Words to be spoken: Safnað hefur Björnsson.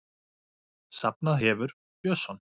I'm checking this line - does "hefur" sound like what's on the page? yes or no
yes